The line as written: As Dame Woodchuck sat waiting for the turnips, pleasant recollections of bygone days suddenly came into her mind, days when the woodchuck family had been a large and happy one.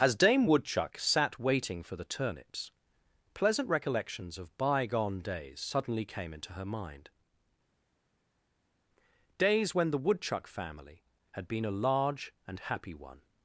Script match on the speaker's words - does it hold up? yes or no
yes